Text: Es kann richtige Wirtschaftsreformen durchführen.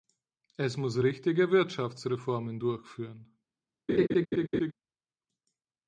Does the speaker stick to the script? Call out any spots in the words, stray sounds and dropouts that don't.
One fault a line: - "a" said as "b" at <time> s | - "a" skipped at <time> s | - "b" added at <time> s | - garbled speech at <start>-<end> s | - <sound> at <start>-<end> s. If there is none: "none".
- "kann" said as "muss" at 0.8 s
- laugh at 3.9-4.7 s